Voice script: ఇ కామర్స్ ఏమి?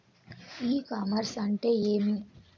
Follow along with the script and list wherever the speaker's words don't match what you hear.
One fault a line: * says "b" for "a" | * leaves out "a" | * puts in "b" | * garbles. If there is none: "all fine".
* puts in "అంటే"